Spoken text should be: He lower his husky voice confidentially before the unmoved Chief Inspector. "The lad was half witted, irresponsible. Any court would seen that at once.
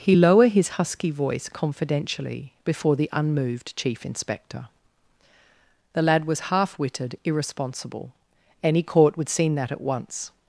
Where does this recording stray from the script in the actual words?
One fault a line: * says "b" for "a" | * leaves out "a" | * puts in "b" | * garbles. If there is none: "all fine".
all fine